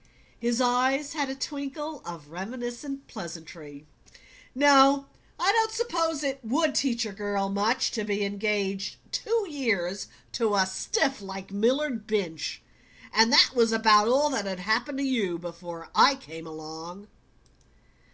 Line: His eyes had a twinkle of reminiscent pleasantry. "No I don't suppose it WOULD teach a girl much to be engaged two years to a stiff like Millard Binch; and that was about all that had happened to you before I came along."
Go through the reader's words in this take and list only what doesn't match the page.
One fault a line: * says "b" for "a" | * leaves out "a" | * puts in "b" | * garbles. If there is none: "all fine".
all fine